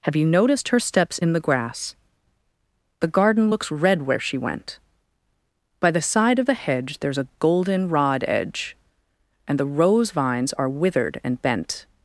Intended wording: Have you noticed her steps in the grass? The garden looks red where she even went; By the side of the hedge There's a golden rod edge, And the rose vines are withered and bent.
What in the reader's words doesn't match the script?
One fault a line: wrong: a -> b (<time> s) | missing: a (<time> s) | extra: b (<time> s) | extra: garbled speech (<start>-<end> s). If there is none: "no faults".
missing: even (4.4 s)